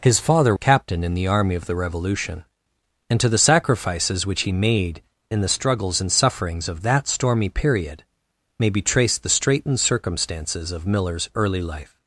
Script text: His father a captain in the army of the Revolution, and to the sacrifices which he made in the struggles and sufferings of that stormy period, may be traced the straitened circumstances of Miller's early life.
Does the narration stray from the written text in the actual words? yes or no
no